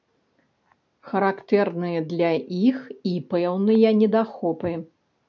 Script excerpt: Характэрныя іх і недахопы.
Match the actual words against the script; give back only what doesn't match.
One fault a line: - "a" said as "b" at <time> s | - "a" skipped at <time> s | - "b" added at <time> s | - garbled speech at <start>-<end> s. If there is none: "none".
- "для" added at 2.1 s
- "пэўныя" added at 3.3 s